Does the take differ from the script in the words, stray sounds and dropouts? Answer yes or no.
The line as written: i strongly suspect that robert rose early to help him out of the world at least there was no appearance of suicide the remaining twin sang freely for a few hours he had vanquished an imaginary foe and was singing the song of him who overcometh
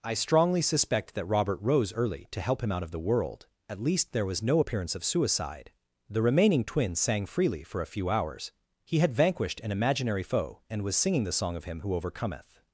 no